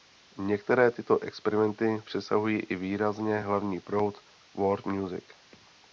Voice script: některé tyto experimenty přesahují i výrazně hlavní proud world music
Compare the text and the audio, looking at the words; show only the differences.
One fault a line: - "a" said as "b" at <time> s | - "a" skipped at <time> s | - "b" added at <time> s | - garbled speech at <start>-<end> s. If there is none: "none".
none